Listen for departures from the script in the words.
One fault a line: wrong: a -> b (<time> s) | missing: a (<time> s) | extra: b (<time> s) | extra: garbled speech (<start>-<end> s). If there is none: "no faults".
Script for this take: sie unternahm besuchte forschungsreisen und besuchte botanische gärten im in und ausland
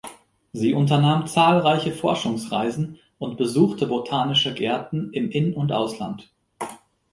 wrong: besuchte -> zahlreiche (1.3 s)